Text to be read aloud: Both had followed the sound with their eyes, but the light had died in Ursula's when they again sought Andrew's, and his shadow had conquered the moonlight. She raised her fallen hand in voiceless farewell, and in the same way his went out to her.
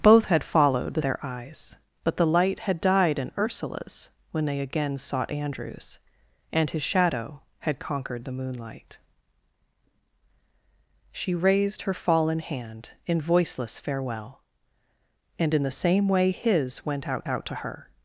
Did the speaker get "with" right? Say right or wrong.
wrong